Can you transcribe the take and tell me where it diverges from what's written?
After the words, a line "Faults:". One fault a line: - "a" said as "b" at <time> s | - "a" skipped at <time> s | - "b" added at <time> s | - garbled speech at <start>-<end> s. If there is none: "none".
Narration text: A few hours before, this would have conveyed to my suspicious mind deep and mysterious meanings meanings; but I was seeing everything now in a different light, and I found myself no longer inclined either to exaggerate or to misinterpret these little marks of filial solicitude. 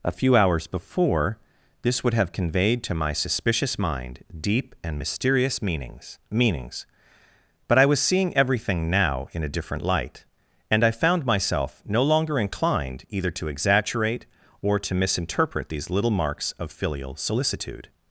A few hours before, this would have conveyed to my suspicious mind deep and mysterious meanings meanings; but I was seeing everything now in a different light, and I found myself no longer inclined either to exaggerate or to misinterpret these little marks of filial solicitude.
Faults:
none